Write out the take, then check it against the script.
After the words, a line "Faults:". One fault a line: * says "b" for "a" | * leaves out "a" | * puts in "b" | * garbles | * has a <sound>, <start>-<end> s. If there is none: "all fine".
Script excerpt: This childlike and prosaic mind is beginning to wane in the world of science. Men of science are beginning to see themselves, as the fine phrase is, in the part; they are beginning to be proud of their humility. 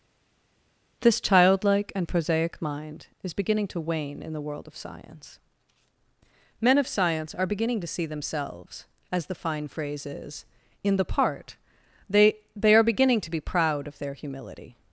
This childlike and prosaic mind is beginning to wane in the world of science. Men of science are beginning to see themselves, as the fine phrase is, in the part; they they are beginning to be proud of their humility.
Faults:
* puts in "they"